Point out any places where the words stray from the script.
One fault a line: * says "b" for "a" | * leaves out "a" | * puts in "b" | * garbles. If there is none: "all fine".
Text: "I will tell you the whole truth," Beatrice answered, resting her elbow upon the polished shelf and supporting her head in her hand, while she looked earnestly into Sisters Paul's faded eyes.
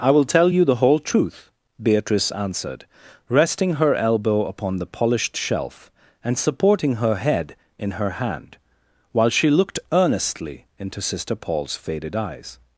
* says "Sister" for "Sisters"